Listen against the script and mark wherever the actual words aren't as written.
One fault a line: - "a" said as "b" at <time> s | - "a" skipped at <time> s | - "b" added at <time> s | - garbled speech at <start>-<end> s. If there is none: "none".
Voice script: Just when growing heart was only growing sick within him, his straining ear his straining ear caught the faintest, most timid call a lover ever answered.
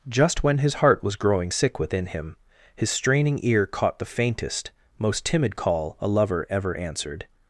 - "growing" said as "his" at 0.6 s
- "only" skipped at 1.1 s
- "his straining ear" skipped at 3.7 s